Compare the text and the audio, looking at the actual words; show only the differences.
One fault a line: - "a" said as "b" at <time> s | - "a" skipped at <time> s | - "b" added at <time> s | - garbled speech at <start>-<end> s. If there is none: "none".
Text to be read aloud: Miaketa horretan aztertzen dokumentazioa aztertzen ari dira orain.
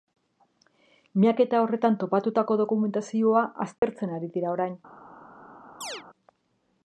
- "aztertzen" said as "topatutako" at 2.0 s